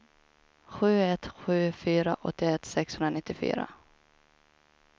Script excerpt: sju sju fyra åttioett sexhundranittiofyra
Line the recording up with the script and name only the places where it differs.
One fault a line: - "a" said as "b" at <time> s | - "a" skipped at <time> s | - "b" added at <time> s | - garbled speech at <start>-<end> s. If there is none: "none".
- "ett" added at 1.0 s